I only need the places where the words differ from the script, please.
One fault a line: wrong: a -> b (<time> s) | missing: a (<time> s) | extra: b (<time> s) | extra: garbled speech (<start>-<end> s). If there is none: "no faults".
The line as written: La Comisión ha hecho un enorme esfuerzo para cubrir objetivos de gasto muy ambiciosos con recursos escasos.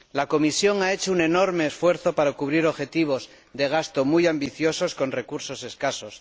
no faults